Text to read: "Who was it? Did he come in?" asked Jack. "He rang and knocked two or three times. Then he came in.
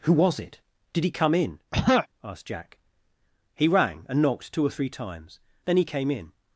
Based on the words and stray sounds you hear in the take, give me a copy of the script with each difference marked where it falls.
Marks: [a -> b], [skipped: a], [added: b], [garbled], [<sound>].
"Who was it? Did he come in?" [throat clearing] asked Jack. "He rang and knocked two or three times. Then he came in.